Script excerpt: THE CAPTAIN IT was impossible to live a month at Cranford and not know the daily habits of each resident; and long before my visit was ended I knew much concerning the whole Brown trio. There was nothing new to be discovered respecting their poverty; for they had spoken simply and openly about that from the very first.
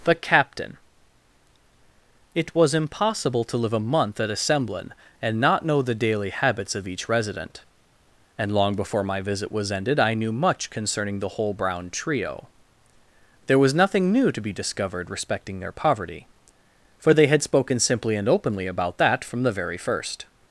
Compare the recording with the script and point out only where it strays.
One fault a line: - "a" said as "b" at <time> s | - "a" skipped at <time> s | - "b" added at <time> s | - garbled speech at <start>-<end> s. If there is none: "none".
- "Cranford" said as "Assemblin" at 4.3 s